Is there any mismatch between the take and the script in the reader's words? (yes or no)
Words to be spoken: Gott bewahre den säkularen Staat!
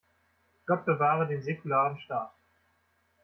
no